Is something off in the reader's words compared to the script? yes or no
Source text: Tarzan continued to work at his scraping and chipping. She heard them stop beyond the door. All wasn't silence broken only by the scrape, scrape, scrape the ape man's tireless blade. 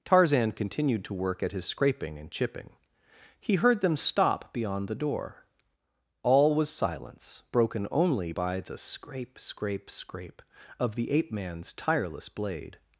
yes